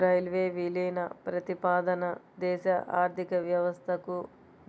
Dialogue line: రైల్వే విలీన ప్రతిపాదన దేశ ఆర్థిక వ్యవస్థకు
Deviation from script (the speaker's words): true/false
false